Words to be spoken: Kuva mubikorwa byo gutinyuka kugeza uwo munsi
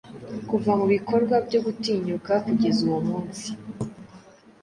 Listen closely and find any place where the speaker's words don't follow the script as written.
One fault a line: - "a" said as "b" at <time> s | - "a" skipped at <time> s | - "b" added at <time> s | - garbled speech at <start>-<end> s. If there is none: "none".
none